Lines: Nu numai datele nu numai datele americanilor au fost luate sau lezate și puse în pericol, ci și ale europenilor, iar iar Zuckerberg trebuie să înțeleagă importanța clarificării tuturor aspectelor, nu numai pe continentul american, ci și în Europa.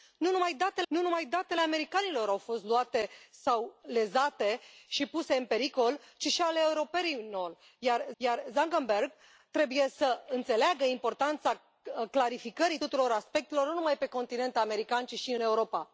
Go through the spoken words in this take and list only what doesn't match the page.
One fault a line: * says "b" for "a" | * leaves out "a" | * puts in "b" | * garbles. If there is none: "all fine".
all fine